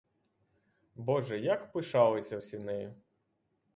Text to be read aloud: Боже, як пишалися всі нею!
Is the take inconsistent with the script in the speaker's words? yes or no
no